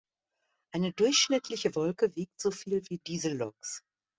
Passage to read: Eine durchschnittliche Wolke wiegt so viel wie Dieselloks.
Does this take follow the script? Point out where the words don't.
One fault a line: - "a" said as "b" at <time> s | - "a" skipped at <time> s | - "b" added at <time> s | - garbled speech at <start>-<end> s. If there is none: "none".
none